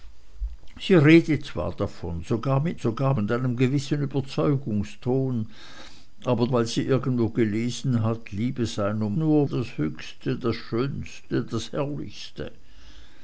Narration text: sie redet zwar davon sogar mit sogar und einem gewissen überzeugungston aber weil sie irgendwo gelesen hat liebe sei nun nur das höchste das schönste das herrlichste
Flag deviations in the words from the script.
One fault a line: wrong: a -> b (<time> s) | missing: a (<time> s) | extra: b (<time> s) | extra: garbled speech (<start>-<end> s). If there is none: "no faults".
no faults